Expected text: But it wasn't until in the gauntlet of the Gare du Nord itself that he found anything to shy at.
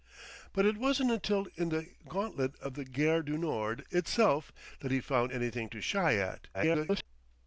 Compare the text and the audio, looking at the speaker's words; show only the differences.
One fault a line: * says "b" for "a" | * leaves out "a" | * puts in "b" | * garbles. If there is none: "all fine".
* garbles